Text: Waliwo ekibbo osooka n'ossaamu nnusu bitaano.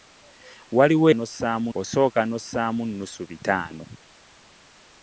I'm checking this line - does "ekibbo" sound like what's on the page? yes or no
no